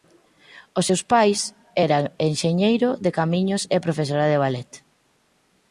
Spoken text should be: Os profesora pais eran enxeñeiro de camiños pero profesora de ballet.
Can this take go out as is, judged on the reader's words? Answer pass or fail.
fail